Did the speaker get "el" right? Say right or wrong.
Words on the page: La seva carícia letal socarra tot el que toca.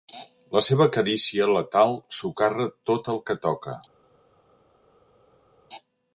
right